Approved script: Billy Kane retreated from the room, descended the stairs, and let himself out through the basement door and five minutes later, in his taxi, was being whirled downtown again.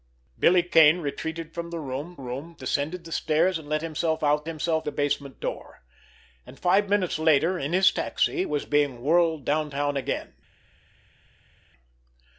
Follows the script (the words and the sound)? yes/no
no